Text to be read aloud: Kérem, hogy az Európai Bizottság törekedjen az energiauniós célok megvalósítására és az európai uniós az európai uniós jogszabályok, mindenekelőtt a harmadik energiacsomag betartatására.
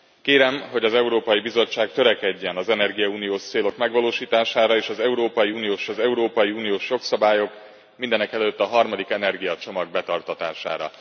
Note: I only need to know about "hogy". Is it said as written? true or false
true